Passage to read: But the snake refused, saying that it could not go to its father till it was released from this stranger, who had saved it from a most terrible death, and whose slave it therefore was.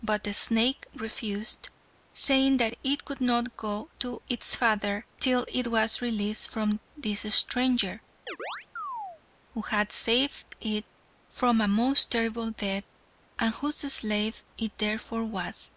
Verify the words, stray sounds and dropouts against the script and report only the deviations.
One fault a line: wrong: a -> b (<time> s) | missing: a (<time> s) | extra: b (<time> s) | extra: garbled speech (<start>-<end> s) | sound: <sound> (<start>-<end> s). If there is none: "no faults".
sound: chirp (8.3-9.2 s)